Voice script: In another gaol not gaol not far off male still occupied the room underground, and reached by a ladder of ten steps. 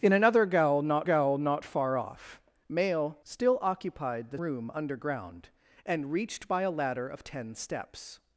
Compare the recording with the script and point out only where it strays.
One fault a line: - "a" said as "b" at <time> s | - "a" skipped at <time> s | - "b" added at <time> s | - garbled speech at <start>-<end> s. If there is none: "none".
none